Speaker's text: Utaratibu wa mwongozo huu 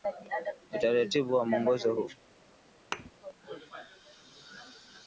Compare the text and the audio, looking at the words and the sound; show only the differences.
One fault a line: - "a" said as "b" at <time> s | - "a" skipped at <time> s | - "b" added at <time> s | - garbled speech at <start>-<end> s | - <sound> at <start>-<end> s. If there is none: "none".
- thud at 2.9-3.1 s